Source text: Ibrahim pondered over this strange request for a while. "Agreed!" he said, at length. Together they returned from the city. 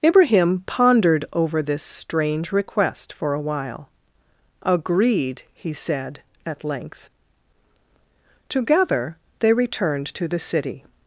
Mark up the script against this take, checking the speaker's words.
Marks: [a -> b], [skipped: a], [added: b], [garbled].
Ibrahim pondered over this strange request for a while. "Agreed!" he said, at length. Together they returned [from -> to] the city.